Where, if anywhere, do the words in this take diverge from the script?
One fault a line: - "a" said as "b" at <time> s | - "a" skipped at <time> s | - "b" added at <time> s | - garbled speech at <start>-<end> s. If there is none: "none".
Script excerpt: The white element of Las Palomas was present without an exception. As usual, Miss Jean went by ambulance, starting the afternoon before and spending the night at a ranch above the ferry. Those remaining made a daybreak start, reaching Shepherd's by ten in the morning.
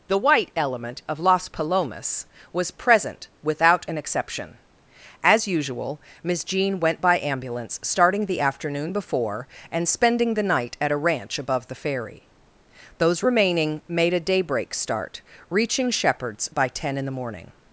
none